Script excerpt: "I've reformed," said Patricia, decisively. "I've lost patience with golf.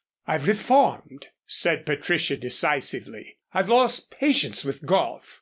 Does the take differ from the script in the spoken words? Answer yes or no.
no